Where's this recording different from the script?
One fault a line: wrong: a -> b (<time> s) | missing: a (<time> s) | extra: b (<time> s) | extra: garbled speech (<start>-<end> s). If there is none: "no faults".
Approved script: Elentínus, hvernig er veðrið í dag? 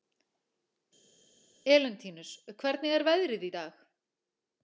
no faults